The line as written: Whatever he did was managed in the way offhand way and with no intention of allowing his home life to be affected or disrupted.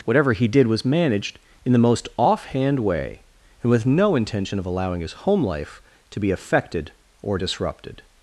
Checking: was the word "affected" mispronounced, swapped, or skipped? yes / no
no